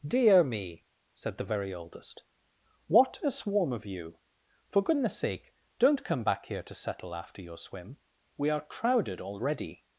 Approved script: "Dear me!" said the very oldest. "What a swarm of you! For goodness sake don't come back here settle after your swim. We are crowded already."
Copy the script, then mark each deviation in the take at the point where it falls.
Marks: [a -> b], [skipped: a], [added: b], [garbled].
"Dear me!" said the very oldest. "What a swarm of you! For goodness sake don't come back here [added: to] settle after your swim. We are crowded already."